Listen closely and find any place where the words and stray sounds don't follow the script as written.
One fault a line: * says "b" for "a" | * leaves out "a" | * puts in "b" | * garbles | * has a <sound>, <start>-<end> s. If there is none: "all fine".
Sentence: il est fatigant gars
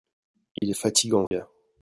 * has a dropout, 0.6-0.6 s
* has a dropout, 1.3-1.3 s